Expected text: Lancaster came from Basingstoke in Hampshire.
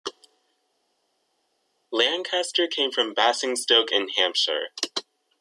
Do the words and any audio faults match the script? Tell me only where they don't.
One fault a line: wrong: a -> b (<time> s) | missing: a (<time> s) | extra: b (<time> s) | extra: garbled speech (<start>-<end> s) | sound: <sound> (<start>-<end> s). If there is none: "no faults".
no faults